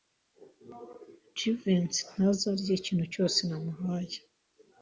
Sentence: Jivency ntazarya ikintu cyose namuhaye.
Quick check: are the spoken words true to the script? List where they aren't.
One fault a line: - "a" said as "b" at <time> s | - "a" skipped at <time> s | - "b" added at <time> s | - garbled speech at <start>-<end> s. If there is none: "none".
none